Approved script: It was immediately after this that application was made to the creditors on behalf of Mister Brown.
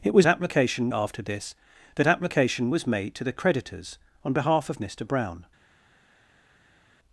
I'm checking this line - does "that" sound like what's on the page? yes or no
yes